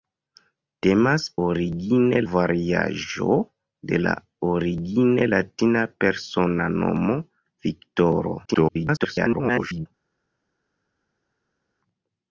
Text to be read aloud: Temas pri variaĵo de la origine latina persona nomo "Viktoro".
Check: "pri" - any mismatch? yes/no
yes